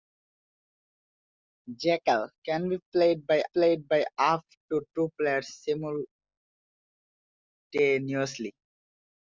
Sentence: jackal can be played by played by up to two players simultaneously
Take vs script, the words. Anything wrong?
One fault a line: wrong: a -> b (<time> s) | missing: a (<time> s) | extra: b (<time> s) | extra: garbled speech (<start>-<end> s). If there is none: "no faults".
no faults